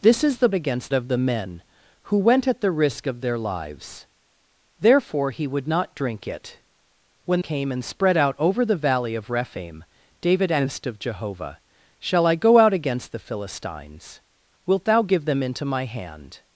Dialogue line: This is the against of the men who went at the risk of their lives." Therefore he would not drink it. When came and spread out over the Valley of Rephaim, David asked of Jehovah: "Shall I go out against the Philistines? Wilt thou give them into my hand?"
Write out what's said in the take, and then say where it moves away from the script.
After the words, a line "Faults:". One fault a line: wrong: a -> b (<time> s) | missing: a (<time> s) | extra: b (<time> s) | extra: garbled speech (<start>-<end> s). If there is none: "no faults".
This is the against of the men who went at the risk of their lives." Therefore he would not drink it. When came and spread out over the Valley of Rephaim, David asked of Jehovah: "Shall I go out against the Philistines? Wilt thou give them into my hand?"
Faults:
no faults